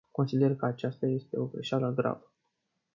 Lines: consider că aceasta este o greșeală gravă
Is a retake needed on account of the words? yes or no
no